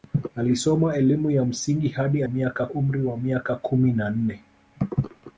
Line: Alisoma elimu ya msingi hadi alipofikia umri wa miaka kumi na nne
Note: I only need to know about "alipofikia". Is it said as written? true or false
false